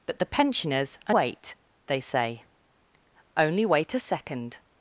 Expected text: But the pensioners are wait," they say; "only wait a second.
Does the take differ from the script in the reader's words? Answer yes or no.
no